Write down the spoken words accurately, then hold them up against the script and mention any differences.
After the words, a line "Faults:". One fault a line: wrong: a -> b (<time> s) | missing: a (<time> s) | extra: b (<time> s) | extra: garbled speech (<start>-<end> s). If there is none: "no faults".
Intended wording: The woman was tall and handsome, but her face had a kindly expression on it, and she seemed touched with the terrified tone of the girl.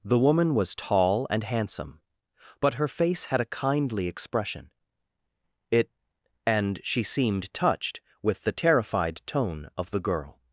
The woman was tall and handsome, but her face had a kindly expression it, and she seemed touched with the terrified tone of the girl.
Faults:
missing: on (4.7 s)